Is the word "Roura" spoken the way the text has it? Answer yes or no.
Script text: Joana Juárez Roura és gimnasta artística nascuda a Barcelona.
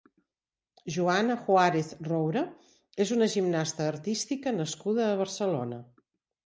yes